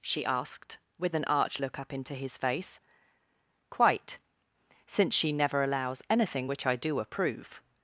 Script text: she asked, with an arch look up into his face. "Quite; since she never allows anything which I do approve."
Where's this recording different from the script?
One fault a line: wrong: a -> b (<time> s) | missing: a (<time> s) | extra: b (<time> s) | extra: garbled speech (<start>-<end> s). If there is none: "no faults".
no faults